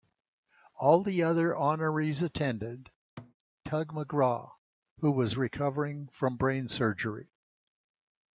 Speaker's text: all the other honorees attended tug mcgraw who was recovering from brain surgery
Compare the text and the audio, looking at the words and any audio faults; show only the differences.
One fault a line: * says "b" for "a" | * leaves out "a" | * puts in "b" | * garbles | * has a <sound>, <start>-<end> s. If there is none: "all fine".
* has a thud, 3.2-3.3 s